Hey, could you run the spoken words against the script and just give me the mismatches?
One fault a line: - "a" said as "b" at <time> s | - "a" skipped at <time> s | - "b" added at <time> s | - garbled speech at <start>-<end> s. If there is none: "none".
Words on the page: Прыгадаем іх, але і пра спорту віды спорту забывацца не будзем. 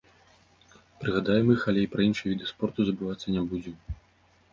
- "спорту" said as "іншыя" at 2.1 s